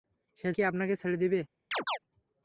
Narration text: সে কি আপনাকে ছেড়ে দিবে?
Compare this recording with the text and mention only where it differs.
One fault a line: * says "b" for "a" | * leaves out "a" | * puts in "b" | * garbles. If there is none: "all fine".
all fine